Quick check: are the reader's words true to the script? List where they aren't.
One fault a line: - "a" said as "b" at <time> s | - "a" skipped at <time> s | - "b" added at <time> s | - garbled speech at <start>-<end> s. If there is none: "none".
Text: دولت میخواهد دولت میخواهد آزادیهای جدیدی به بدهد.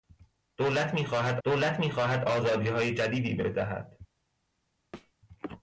none